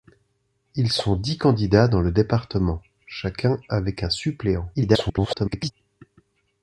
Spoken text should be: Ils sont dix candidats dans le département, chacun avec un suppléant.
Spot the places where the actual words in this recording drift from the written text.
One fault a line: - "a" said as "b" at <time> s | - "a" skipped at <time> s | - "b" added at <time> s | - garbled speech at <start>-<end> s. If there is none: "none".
- garbled speech at 4.7-5.7 s